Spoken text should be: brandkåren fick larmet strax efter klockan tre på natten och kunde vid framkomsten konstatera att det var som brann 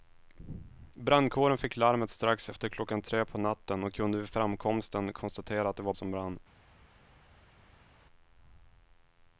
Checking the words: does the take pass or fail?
pass